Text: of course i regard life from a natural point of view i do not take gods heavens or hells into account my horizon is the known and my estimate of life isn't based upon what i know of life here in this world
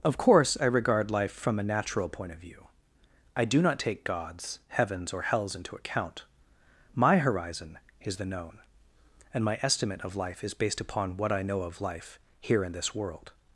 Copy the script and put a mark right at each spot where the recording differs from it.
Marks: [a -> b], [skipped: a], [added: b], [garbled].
of course i regard life from a natural point of view i do not take gods heavens or hells into account my horizon is the known and my estimate of life [isn't -> is] based upon what i know of life here in this world